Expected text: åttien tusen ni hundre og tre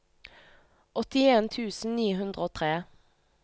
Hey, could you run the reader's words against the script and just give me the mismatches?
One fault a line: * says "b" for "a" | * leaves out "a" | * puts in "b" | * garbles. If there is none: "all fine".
all fine